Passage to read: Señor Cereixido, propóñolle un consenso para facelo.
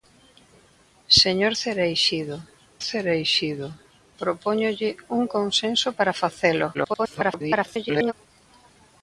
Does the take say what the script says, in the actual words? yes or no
no